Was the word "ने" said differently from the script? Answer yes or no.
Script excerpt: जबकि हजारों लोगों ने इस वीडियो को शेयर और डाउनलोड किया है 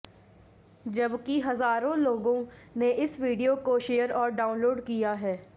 no